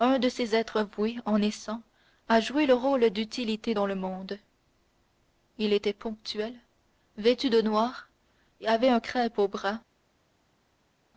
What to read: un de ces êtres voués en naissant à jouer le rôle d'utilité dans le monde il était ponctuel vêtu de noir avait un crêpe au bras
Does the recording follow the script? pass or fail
pass